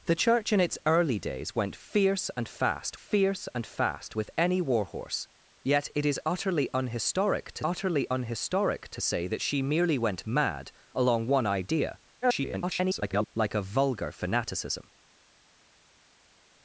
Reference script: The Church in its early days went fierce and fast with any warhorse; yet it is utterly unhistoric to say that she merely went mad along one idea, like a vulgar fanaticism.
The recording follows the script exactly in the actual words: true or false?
false